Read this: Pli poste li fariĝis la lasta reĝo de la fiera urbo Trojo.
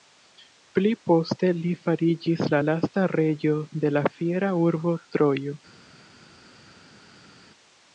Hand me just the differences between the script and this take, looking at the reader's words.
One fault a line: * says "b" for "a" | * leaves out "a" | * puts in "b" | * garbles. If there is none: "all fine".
all fine